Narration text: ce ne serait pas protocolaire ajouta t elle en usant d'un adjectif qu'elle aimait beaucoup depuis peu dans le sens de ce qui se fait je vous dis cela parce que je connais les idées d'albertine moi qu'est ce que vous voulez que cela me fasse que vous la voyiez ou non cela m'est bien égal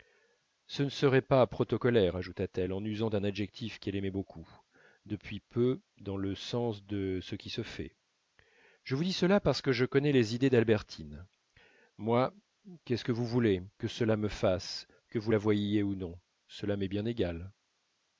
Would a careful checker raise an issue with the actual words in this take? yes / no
no